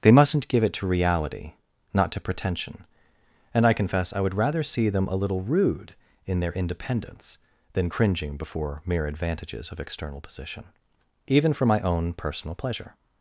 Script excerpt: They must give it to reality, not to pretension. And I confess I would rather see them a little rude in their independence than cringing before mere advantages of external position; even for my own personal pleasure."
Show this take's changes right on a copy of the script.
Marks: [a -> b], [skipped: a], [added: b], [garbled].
They [must -> mustn't] give it to reality, not to pretension. And I confess I would rather see them a little rude in their independence than cringing before mere advantages of external position; even for my own personal pleasure."